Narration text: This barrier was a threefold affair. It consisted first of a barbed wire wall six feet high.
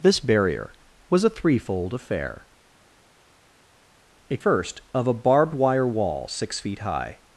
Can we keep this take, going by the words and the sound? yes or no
no